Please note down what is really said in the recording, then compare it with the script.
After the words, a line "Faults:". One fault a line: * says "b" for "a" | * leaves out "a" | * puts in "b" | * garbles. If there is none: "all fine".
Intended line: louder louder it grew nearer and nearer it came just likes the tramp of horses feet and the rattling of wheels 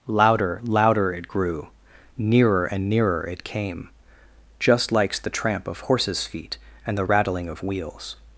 louder louder it grew nearer and nearer it came just likes the tramp of horses feet and the rattling of wheels
Faults:
all fine